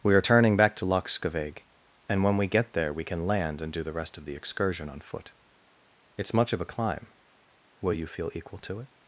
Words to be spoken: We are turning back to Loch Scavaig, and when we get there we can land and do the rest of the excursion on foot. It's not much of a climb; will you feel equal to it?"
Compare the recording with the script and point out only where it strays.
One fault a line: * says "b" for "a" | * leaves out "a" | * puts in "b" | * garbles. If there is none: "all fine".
* leaves out "not"